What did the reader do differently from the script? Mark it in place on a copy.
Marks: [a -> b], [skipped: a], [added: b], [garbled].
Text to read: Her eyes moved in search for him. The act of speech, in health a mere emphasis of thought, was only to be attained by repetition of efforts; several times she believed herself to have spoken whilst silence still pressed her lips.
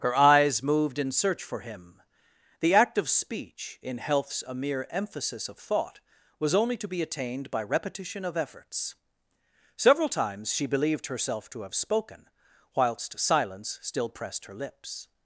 Her eyes moved in search for him. The act of speech, in [health -> healths] a mere emphasis of thought, was only to be attained by repetition of efforts; several times she believed herself to have spoken whilst silence still pressed her lips.